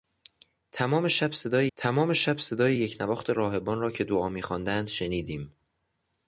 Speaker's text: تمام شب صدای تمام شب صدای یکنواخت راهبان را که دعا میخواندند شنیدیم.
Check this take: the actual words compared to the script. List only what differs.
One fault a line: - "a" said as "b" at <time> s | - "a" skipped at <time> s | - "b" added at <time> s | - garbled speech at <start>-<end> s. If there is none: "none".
none